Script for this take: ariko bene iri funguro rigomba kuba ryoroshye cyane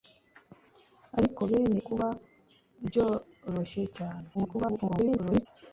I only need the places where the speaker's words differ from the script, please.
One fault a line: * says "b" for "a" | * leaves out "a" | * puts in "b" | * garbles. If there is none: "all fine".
* leaves out "iri funguro rigomba"
* garbles